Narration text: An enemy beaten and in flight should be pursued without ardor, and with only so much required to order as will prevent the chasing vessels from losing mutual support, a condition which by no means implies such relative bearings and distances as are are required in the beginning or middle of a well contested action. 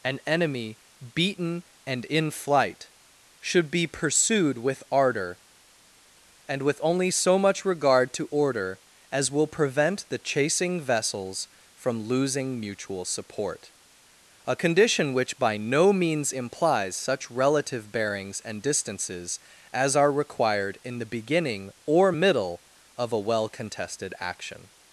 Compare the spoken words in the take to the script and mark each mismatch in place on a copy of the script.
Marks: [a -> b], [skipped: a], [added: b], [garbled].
An enemy beaten and in flight should be pursued [without -> with] ardor, and with only so much [required -> regard] to order as will prevent the chasing vessels from losing mutual support, a condition which by no means implies such relative bearings and distances as are [skipped: are] required in the beginning or middle of a well contested action.